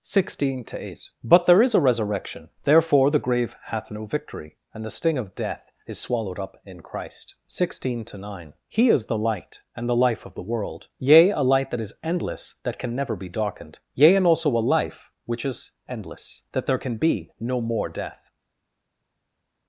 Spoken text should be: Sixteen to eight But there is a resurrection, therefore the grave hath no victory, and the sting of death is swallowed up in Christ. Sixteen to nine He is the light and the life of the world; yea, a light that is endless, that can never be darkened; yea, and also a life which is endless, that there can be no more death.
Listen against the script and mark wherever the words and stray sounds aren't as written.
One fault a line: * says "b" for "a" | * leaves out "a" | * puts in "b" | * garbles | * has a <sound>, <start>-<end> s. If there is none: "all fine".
all fine